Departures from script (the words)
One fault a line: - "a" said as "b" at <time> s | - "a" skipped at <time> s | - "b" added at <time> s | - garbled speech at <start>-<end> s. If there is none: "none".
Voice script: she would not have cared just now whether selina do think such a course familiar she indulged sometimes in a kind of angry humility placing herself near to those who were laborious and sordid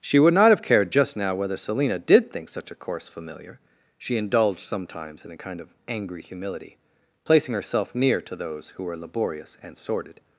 - "do" said as "did" at 2.0 s